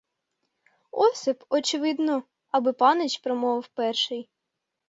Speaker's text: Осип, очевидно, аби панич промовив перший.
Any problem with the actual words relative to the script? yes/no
no